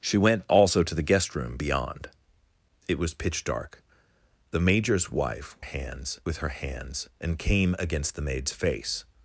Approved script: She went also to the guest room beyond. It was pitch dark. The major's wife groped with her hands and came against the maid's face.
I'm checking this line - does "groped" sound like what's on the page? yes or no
no